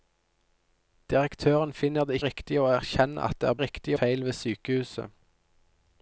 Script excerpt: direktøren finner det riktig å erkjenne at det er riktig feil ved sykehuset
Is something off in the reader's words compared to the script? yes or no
no